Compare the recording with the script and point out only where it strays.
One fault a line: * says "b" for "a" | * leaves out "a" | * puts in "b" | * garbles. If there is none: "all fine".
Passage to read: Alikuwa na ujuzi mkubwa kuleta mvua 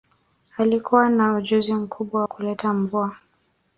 all fine